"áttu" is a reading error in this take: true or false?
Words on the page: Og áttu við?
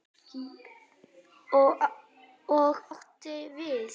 false